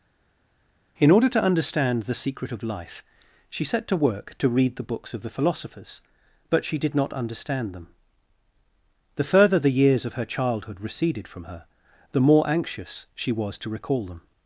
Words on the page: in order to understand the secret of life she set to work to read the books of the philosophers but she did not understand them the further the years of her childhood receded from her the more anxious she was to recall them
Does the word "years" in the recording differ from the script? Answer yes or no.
no